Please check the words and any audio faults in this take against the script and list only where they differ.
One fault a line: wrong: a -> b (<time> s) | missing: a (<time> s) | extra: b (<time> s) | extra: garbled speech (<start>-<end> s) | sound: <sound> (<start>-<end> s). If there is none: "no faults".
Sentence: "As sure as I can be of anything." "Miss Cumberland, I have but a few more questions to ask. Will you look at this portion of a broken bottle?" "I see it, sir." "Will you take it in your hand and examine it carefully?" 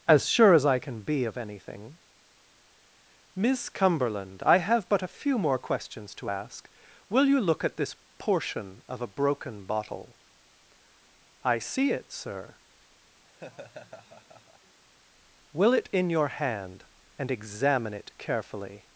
sound: laugh (13.2-14.8 s)
missing: you take (15.7 s)